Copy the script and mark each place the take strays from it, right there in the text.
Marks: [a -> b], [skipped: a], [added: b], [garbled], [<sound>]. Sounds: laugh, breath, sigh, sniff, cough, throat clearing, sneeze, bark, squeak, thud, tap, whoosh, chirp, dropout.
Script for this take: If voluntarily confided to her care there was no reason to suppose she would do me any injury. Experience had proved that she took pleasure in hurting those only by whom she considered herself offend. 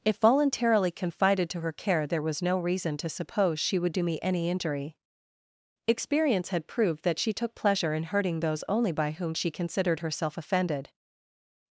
If voluntarily confided to her care there was no reason to suppose she would do me any injury. Experience had proved that she took pleasure in hurting those only by whom she considered herself [offend. -> offended]